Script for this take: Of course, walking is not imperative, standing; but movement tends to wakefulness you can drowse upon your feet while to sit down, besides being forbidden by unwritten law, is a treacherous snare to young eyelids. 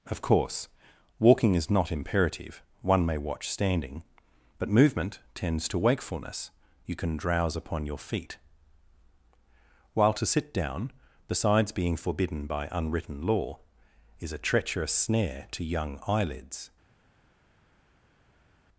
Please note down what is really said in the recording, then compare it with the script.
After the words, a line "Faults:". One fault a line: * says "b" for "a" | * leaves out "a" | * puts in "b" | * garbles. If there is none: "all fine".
Of course, walking is not imperative, one may watch standing; but movement tends to wakefulness you can drowse upon your feet while to sit down, besides being forbidden by unwritten law, is a treacherous snare to young eyelids.
Faults:
* puts in "one may watch"